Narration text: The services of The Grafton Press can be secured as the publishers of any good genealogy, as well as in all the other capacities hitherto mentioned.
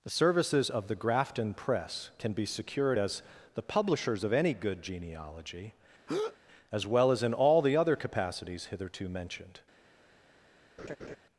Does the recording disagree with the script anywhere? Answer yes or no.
no